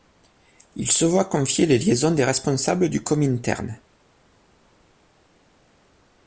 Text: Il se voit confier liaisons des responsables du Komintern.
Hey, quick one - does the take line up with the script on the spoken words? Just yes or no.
no